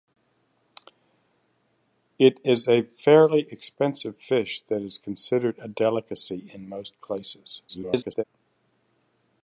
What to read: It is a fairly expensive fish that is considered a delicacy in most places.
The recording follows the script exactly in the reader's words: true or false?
false